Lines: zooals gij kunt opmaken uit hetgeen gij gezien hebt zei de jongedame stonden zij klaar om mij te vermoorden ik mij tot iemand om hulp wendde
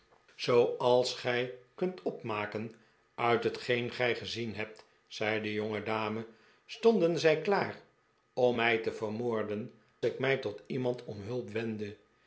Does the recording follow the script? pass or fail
pass